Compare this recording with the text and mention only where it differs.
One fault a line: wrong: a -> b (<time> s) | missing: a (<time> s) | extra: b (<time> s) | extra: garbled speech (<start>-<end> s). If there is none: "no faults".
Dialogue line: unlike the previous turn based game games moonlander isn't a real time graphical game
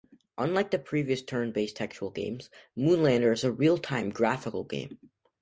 wrong: game -> textual (1.8 s)
wrong: isn't -> is (3.3 s)